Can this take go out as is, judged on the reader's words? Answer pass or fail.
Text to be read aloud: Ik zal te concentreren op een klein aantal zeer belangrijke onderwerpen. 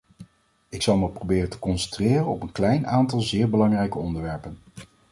fail